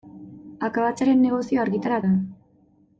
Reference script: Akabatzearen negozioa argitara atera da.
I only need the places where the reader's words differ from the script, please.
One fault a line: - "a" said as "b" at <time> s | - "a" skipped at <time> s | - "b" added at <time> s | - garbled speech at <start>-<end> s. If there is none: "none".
- "atera" skipped at 2.0 s